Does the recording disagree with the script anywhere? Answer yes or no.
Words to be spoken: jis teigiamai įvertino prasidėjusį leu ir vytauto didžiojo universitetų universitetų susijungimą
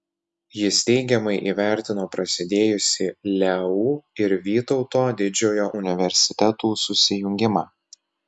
yes